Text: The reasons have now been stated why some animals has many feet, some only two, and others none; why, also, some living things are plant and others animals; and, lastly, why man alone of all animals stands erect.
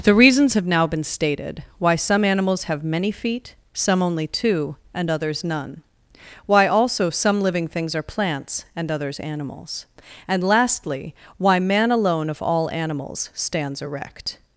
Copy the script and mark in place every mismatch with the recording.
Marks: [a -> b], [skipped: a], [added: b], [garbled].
The reasons have now been stated why some animals [has -> have] many feet, some only two, and others none; why, also, some living things are [plant -> plants] and others animals; and, lastly, why man alone of all animals stands erect.